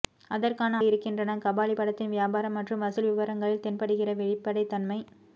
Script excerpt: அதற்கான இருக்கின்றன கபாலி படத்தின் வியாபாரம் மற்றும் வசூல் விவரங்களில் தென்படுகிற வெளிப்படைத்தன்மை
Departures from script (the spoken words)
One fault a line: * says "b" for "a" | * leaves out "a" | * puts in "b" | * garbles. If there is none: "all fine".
all fine